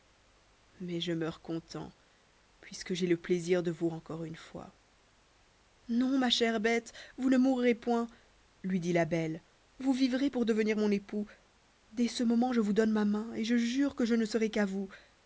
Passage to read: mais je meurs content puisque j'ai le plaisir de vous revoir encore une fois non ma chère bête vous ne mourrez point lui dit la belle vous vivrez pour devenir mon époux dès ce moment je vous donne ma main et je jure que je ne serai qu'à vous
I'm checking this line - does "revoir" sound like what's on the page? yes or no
no